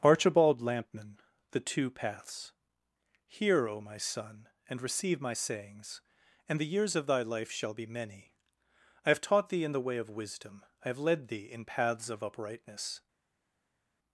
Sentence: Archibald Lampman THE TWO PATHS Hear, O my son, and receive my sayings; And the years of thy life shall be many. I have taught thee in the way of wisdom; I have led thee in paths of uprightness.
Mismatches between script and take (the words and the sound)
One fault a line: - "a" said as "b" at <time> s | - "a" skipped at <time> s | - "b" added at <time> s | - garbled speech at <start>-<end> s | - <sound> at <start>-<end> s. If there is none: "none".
none